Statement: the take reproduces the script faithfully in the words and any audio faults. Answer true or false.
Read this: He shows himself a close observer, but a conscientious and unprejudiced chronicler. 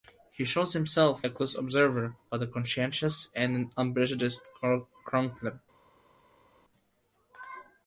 true